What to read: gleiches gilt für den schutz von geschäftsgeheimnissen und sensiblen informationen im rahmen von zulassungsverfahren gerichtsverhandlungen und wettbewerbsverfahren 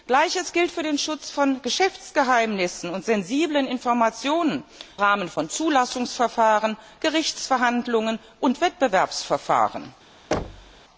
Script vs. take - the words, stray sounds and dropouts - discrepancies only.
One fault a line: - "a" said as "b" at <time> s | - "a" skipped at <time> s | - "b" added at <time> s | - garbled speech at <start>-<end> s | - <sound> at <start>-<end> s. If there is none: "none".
- "im" skipped at 4.6 s
- thud at 10.3-10.8 s